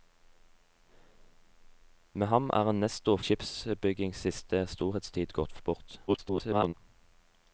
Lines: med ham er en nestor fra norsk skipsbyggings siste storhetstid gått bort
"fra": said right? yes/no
no